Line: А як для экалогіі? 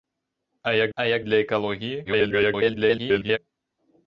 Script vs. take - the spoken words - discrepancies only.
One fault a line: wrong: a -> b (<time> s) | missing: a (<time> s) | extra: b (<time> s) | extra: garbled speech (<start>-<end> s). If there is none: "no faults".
extra: а як (0.9 s)
extra: garbled speech (2.0-3.4 s)